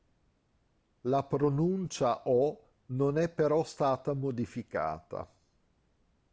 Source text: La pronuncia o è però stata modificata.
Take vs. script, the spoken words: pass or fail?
fail